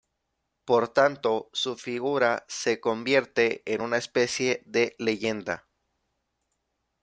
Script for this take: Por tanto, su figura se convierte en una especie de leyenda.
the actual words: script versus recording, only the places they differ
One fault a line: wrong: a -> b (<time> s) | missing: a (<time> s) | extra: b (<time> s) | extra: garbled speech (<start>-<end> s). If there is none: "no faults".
no faults